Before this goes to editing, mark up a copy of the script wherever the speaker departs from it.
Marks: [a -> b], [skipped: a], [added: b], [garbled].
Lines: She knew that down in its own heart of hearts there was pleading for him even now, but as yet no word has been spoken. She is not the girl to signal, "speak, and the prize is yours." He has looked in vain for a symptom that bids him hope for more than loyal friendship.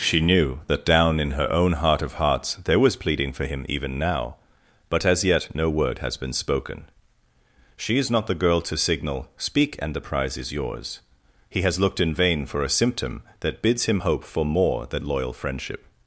She knew that down in [its -> her] own heart of hearts there was pleading for him even now, but as yet no word has been spoken. She is not the girl to signal, "speak, and the prize is yours." He has looked in vain for a symptom that bids him hope for more than loyal friendship.